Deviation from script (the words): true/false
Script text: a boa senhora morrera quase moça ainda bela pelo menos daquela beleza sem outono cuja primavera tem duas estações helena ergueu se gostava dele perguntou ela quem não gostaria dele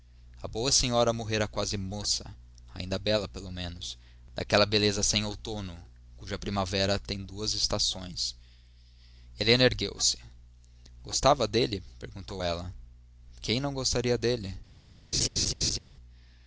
false